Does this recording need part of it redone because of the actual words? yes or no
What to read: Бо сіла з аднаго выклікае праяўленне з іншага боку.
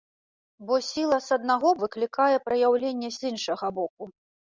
no